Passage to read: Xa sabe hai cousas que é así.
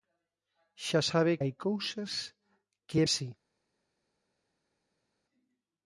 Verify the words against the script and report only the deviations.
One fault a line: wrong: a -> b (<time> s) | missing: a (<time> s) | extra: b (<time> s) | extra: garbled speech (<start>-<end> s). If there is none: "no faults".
no faults